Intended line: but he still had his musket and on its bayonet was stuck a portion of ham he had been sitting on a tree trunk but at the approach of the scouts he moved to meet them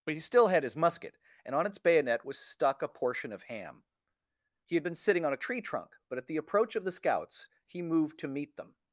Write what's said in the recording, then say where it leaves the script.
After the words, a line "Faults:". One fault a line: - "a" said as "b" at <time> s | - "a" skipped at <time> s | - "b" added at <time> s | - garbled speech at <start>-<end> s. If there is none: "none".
but he still had his musket and on its bayonet was stuck a portion of ham he had been sitting on a tree trunk but at the approach of the scouts he moved to meet them
Faults:
none